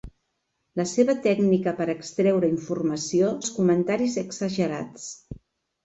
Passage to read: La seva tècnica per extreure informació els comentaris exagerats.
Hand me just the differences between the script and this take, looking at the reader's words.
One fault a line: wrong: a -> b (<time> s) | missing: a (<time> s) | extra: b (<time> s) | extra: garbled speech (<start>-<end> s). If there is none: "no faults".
no faults